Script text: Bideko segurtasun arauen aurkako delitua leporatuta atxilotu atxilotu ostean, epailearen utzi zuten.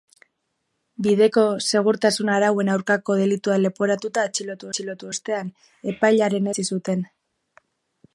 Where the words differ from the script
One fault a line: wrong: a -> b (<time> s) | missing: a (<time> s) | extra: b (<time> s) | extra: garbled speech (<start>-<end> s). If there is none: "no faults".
no faults